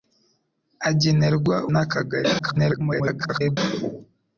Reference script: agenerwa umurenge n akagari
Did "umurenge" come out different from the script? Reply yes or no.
yes